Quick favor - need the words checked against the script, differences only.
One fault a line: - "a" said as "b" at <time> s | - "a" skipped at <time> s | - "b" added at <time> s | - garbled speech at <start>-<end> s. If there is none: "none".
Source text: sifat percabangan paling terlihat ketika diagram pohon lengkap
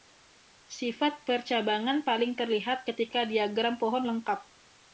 none